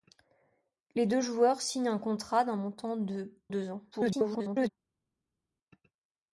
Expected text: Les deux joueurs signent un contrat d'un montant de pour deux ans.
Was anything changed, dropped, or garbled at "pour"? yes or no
yes